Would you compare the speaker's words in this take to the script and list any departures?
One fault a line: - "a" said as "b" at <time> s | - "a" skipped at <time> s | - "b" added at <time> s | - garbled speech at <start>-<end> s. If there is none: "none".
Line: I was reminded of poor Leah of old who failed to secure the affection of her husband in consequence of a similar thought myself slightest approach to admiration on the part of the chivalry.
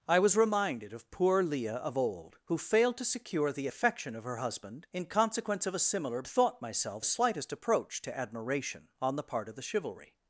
none